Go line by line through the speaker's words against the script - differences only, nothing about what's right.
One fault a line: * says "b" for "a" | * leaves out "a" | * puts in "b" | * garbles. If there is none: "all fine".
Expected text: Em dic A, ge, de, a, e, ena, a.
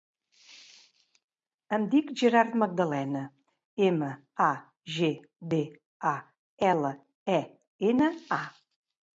* puts in "Gerard Magdalena ema"
* puts in "ela"